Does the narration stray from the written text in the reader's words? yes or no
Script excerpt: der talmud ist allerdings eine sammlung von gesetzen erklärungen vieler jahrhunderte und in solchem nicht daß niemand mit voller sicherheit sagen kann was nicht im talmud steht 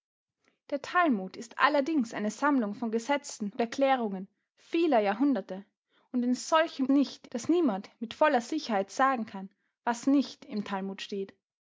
no